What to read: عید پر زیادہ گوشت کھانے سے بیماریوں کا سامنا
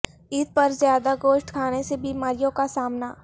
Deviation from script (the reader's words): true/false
false